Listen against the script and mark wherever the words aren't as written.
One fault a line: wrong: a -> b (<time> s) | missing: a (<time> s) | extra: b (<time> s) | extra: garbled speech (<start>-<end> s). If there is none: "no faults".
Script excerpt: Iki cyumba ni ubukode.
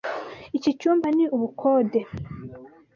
no faults